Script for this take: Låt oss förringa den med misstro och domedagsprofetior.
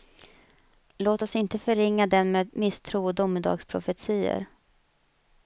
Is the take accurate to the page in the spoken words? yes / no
no